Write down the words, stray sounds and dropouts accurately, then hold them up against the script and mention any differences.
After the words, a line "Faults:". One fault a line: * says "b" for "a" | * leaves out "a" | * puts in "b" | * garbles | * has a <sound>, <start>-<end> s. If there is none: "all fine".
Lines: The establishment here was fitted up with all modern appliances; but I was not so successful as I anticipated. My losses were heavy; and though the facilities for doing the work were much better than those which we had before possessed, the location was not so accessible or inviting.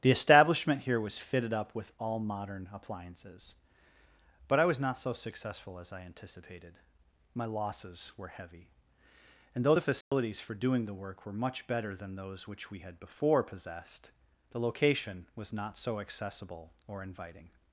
The establishment here was fitted up with all modern appliances; but I was not so successful as I anticipated. My losses were heavy; and though the facilities for doing the work were much better than those which we had before possessed, the location was not so accessible or inviting.
Faults:
* has a dropout, 10.0-10.1 s